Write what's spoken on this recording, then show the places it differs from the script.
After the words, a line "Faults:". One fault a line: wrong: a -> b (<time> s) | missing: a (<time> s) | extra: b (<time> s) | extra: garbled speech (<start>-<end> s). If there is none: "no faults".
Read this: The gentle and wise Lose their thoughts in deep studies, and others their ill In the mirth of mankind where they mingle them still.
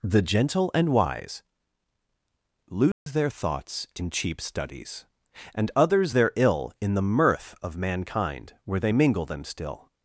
The gentle and wise Lose their thoughts in cheap studies, and others their ill In the mirth of mankind where they mingle them still.
Faults:
wrong: deep -> cheap (4.1 s)